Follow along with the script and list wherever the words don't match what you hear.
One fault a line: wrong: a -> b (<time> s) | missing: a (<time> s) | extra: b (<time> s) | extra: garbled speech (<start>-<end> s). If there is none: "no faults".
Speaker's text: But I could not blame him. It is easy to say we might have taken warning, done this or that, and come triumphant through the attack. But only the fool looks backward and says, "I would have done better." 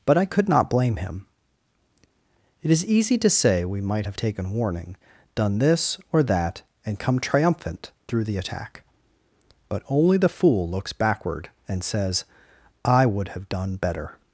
no faults